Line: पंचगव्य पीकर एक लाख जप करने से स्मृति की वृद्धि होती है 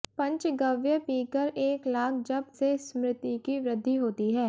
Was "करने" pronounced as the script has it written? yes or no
no